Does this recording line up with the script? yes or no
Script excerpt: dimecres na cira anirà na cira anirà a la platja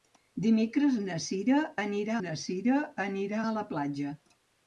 yes